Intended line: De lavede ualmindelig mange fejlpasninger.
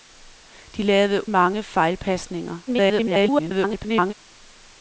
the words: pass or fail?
fail